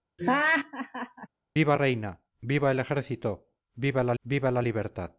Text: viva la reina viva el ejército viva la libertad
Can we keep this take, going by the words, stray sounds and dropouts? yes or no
no